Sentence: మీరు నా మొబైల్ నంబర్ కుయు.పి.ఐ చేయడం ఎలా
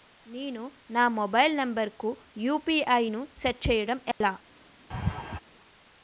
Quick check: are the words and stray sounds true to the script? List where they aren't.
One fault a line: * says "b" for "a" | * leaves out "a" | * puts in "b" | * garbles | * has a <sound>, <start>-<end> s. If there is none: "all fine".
* says "నేను" for "మీరు"
* puts in "ను సెట్"
* has a dropout, 4.1-4.2 s
* has a laugh, 4.9-5.4 s